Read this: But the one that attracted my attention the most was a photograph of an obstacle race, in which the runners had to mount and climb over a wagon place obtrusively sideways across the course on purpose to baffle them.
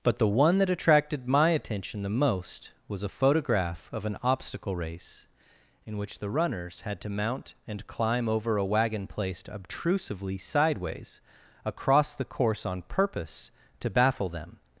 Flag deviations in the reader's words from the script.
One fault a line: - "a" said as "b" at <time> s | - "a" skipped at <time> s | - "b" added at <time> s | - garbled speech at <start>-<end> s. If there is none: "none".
- "place" said as "placed" at 9.1 s